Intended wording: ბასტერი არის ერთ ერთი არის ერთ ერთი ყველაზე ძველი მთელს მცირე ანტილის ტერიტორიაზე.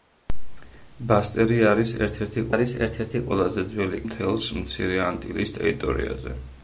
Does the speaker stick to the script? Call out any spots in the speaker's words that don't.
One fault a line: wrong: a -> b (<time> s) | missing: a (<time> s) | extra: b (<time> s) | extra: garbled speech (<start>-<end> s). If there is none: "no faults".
no faults